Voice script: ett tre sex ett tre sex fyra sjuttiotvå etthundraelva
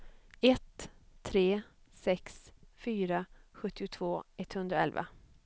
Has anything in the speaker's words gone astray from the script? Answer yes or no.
yes